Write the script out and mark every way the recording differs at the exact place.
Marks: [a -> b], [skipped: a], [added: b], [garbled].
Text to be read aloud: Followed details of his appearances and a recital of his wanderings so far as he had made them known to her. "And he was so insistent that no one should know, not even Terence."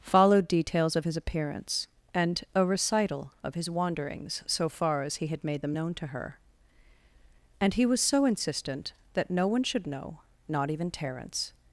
Followed details of his [appearances -> appearance] and a recital of his wanderings so far as he had made them known to her. "And he was so insistent that no one should know, not even Terence."